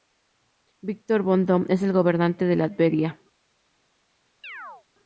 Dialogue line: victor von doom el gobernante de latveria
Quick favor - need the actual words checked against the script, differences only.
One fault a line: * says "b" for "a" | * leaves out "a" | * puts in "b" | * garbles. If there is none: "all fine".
* puts in "es"